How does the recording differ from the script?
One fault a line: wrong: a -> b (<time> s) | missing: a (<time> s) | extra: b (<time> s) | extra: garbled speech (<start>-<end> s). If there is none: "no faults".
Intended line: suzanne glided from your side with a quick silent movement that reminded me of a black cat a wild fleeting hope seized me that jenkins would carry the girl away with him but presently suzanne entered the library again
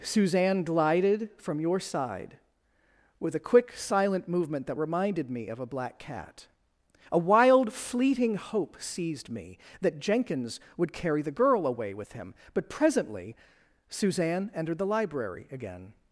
no faults